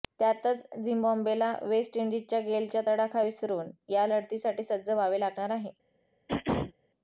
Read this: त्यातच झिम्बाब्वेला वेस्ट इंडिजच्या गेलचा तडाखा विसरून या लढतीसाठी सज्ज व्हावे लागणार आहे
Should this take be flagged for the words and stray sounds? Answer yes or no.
yes